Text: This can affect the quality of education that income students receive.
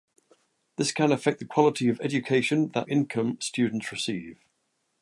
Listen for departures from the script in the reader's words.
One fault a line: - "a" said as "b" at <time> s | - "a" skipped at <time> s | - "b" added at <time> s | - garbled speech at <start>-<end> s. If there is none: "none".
none